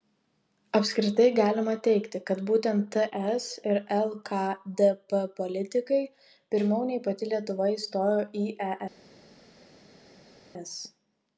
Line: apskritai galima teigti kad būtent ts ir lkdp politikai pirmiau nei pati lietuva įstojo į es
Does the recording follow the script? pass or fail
pass